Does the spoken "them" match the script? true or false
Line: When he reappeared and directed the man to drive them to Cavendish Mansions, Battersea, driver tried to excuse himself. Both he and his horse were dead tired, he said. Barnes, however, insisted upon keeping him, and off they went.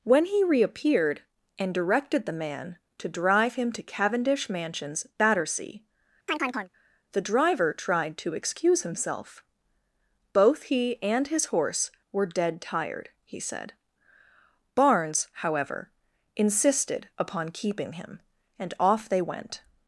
false